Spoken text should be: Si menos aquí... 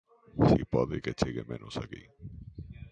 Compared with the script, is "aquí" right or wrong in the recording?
right